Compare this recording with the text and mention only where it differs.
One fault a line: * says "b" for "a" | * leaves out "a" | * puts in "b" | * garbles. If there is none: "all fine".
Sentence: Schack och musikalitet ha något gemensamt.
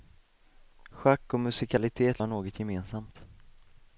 all fine